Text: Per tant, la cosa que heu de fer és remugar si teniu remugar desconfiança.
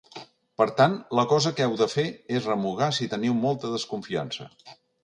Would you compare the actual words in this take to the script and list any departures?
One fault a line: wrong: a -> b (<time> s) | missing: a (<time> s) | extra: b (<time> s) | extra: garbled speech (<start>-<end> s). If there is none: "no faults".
wrong: remugar -> molta (3.5 s)